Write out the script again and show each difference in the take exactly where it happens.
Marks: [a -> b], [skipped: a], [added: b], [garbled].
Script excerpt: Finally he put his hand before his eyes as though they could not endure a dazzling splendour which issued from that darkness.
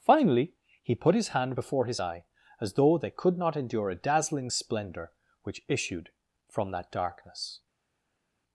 Finally he put his hand before his [eyes -> eye] as though they could not endure a dazzling splendour which issued from that darkness.